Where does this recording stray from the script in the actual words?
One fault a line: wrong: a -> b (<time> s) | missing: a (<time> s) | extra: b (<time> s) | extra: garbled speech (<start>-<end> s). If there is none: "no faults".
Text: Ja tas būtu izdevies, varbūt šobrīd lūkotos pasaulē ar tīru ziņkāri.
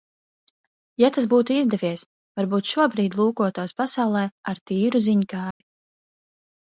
no faults